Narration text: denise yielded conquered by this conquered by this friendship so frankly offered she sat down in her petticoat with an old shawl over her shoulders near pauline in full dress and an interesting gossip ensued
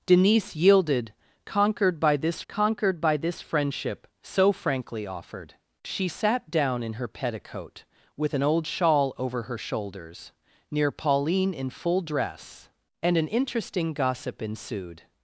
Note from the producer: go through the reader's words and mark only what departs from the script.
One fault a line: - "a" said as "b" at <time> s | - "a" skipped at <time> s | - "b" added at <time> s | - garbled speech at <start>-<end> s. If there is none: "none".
none